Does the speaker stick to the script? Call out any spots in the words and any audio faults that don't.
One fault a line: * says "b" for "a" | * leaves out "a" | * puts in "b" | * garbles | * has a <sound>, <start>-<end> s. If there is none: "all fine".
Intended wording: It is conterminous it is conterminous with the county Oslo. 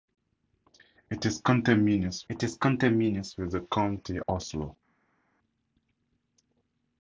all fine